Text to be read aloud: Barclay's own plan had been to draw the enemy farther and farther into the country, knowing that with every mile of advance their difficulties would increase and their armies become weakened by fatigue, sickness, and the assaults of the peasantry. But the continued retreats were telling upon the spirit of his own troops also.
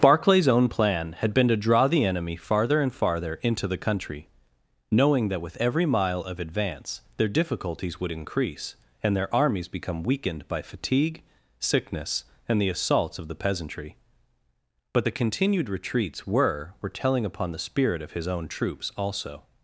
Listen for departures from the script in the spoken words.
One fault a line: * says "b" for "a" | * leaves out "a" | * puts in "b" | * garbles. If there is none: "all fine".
* puts in "were"